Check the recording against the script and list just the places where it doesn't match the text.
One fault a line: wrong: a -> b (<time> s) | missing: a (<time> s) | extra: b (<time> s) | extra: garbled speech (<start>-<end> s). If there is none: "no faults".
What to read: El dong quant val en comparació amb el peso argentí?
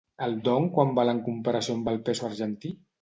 no faults